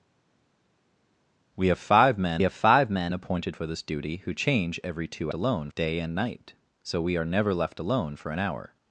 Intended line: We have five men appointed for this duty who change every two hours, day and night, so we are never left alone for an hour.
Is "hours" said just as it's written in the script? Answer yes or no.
no